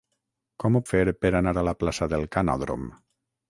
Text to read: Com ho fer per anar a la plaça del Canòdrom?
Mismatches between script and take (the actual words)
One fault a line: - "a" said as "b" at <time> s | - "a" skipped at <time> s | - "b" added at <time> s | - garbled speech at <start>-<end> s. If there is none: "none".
none